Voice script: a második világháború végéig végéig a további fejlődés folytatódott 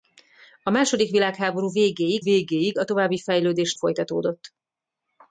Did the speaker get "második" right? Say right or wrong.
right